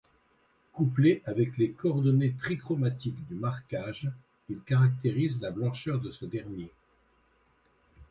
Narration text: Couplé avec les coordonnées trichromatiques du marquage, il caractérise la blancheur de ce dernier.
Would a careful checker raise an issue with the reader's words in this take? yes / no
no